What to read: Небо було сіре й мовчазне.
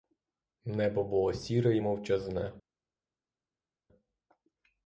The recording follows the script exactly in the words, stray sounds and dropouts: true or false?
true